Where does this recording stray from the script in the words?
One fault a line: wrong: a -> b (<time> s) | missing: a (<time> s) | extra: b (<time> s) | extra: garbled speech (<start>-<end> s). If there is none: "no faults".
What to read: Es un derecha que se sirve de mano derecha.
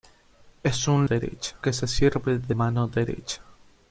no faults